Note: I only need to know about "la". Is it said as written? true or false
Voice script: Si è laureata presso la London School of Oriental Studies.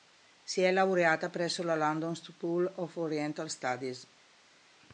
true